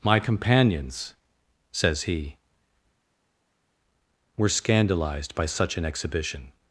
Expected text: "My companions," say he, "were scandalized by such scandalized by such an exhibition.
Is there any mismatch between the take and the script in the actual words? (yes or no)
yes